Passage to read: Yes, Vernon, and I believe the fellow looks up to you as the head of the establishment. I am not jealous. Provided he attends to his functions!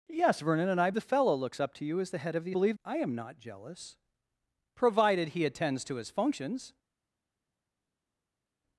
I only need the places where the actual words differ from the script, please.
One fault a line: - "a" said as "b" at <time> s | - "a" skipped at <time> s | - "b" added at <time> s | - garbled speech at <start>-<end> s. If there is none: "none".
- "believe" skipped at 0.9 s
- "establishment" said as "believe" at 2.5 s